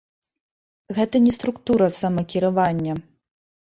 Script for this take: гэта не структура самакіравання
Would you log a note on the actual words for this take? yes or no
no